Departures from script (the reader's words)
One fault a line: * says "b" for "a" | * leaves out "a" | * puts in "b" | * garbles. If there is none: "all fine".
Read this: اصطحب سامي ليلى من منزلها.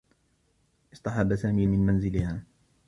* leaves out "ليلى"